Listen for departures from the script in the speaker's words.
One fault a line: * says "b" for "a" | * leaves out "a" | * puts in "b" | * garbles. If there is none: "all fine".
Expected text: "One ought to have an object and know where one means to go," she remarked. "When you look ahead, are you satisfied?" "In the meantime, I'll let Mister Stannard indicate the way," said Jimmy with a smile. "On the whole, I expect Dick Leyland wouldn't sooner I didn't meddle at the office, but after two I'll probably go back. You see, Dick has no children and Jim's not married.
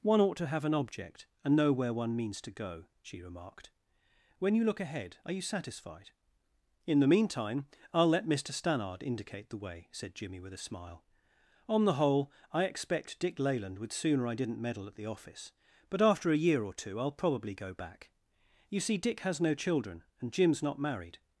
* says "would" for "wouldn't"
* puts in "a year or"